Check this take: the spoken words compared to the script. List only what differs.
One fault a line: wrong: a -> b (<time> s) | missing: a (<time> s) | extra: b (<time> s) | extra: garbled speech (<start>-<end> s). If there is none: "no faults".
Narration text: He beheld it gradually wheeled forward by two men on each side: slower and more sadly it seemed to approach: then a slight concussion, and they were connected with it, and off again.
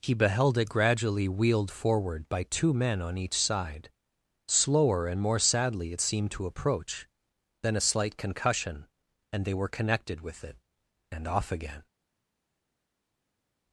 no faults